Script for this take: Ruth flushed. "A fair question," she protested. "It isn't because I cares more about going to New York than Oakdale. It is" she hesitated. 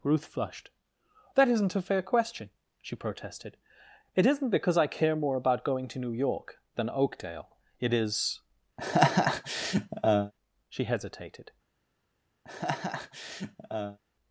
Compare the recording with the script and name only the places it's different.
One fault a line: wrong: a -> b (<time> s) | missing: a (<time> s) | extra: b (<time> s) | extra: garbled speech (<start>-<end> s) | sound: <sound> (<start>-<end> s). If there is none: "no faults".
extra: That isn't (1.4 s)
wrong: cares -> care (4.9 s)
sound: laugh (8.8-10.3 s)
sound: laugh (12.4-14.0 s)